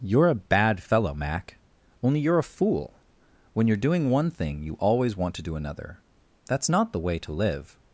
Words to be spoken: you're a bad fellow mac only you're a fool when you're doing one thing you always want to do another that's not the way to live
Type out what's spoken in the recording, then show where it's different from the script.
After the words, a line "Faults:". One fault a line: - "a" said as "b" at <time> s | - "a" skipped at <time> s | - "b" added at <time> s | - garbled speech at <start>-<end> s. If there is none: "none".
you're a bad fellow mac only you're a fool when you're doing one thing you always want to do another that's not the way to live
Faults:
none